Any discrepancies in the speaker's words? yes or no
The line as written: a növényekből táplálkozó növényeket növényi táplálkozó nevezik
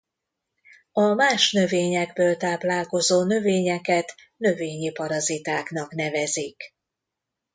yes